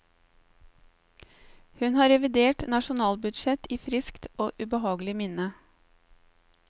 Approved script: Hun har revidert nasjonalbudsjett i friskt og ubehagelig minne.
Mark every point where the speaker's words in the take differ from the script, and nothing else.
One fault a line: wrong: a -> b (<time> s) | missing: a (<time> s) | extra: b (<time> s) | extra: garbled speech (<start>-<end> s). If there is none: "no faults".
no faults